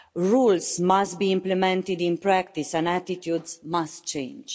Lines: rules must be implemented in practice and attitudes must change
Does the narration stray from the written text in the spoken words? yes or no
no